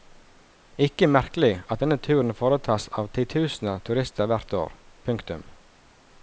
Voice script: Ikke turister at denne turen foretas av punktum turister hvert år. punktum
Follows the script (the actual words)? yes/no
no